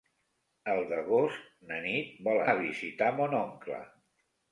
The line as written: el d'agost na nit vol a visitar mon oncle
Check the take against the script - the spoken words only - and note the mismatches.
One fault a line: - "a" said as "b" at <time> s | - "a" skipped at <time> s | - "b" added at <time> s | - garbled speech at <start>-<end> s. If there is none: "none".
none